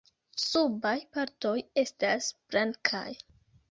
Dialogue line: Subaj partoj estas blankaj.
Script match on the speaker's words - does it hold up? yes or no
yes